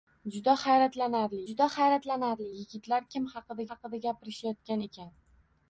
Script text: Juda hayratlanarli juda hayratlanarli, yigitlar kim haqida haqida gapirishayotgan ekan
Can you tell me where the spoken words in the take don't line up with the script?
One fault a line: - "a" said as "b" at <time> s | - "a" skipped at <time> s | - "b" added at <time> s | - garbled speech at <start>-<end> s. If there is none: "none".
none